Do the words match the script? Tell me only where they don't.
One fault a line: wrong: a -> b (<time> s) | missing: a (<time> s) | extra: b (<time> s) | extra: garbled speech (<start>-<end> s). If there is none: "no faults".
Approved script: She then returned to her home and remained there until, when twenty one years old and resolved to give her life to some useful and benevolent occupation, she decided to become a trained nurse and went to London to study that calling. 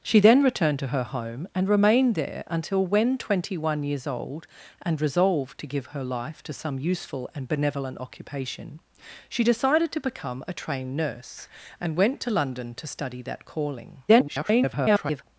extra: garbled speech (14.1-15.2 s)